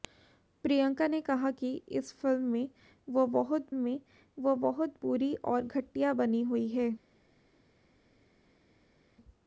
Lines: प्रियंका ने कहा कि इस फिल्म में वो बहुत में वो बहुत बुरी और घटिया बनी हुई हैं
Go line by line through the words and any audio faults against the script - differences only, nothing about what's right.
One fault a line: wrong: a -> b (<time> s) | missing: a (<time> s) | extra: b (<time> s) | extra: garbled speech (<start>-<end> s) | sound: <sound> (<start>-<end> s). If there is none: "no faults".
no faults